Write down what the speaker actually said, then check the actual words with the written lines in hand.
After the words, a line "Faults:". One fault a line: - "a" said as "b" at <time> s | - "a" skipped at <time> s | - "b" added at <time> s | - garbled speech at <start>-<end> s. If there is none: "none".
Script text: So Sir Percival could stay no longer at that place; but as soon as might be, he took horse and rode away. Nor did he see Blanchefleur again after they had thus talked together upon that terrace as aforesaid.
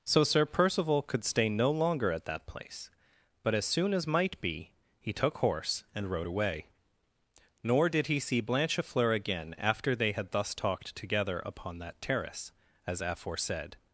So Sir Percival could stay no longer at that place; but as soon as might be, he took horse and rode away. Nor did he see Blanchefleur again after they had thus talked together upon that terrace as aforesaid.
Faults:
none